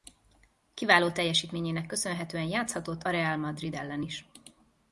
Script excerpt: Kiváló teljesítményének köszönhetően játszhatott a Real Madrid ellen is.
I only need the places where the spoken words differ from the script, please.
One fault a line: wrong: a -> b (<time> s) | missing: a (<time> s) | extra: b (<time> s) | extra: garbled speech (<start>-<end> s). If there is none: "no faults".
no faults